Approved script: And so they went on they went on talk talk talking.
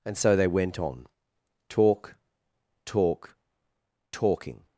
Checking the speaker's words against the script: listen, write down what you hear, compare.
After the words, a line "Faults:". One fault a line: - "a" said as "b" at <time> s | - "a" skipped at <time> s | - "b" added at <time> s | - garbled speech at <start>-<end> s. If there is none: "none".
And so they went on talk talk talking.
Faults:
- "they went on" skipped at 1.1 s